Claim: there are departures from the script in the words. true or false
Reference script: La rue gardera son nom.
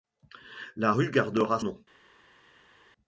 true